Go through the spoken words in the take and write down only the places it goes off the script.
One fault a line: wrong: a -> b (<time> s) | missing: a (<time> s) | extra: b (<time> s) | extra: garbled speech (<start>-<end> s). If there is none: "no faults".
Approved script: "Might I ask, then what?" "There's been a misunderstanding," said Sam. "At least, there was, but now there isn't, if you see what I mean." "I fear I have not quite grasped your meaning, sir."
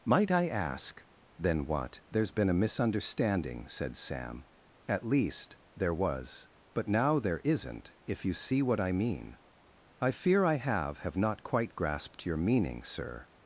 extra: have (11.1 s)